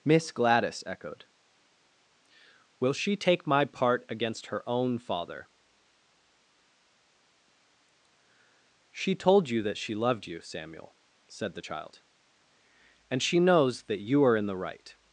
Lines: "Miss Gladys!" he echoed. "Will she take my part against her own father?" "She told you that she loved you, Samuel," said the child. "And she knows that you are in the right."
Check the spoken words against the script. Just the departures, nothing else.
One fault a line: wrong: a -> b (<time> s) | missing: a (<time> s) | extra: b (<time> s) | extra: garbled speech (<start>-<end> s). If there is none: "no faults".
missing: he (0.8 s)